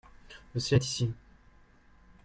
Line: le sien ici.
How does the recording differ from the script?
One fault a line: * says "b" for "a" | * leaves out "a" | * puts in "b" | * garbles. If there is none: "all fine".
* puts in "est"